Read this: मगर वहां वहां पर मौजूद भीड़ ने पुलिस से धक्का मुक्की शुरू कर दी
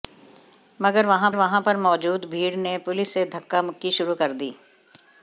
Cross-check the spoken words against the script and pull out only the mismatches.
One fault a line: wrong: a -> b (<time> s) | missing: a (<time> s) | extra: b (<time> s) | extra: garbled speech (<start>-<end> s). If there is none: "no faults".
no faults